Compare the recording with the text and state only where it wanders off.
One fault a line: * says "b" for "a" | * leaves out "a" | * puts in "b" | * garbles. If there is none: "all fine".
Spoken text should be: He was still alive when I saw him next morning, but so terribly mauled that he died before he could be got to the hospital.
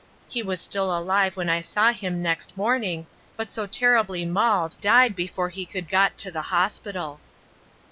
* leaves out "that he"
* leaves out "be"